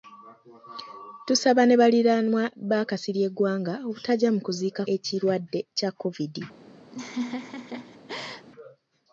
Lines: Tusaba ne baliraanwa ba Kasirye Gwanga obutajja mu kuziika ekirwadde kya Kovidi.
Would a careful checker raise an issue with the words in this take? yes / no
no